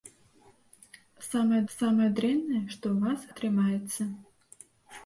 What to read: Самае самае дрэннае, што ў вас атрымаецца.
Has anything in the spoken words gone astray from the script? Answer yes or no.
no